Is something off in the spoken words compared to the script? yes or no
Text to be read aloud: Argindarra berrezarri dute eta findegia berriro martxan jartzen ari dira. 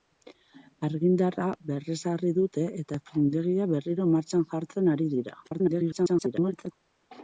yes